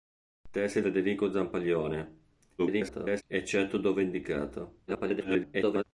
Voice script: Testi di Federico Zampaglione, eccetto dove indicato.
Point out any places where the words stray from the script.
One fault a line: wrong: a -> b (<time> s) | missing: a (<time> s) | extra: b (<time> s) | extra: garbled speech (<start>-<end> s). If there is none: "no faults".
missing: di (0.8 s)
extra: garbled speech (2.6-3.2 s)
extra: garbled speech (4.9-5.8 s)